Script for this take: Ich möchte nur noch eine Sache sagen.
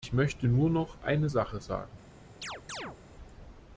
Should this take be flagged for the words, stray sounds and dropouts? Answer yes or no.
yes